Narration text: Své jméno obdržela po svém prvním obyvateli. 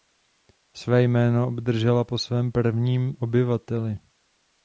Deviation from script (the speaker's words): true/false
false